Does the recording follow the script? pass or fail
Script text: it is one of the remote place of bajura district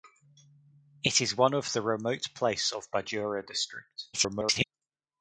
fail